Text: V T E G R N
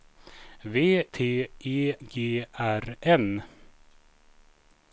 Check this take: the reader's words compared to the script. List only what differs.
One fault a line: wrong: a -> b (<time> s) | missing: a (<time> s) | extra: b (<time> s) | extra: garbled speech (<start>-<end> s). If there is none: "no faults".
no faults